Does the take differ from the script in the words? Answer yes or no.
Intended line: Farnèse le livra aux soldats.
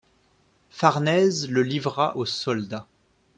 no